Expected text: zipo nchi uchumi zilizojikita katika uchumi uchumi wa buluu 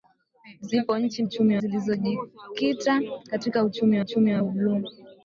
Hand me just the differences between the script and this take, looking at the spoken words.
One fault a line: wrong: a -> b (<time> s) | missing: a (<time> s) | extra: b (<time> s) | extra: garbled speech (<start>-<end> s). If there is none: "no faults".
no faults